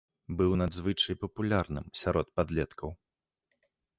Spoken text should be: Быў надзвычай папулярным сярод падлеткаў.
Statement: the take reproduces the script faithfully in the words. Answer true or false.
true